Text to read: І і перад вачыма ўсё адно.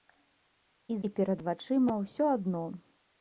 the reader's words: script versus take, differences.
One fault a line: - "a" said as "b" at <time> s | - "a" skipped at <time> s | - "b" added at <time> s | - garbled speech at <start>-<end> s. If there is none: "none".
none